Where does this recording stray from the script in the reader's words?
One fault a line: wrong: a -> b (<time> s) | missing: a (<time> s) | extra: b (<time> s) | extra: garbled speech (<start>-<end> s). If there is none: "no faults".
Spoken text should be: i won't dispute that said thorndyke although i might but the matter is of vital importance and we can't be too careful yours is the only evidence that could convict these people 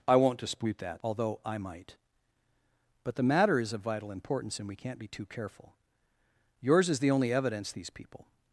missing: said thorndyke (1.0 s)
missing: that could convict (7.7 s)